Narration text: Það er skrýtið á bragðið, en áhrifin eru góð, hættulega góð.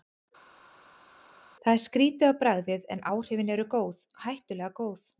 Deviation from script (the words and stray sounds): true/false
false